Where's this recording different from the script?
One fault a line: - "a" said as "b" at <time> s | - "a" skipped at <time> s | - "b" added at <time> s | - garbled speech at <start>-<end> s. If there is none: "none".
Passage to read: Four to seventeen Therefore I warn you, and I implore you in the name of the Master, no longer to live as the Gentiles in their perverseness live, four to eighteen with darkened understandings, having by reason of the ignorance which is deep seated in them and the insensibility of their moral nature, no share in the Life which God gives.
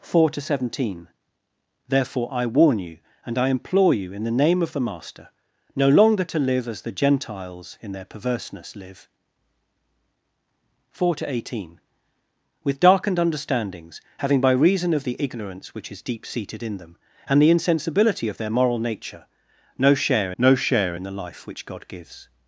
- "no share" added at 20.4 s